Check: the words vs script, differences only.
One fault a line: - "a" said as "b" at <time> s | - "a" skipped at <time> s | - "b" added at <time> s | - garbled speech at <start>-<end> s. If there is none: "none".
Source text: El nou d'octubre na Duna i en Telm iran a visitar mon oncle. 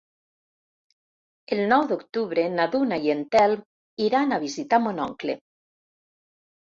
none